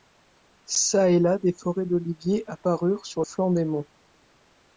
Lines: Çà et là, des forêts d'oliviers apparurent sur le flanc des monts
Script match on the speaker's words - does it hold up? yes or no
no